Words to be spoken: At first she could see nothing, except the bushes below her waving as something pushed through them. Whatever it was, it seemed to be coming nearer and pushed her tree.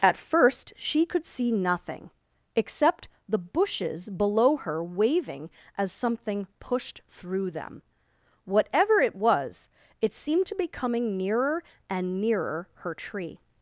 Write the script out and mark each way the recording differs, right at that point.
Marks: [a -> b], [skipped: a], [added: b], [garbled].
At first she could see nothing, except the bushes below her waving as something pushed through them. Whatever it was, it seemed to be coming nearer and [pushed -> nearer] her tree.